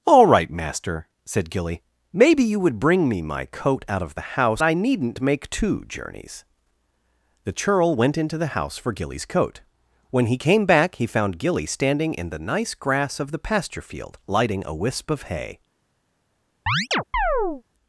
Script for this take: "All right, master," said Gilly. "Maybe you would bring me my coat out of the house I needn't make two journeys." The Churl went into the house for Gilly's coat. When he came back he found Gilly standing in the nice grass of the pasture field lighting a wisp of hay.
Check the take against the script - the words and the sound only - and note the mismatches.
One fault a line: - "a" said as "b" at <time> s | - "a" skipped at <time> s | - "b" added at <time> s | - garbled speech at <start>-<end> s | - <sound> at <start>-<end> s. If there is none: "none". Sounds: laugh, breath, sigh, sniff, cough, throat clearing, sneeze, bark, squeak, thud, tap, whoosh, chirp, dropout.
- chirp at 16.7-17.6 s